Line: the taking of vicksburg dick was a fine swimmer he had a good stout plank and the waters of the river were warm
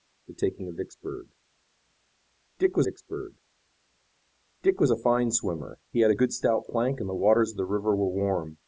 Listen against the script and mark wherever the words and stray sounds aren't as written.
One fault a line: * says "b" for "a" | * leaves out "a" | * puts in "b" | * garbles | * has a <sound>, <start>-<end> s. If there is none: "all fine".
* puts in "vicksburg dick was"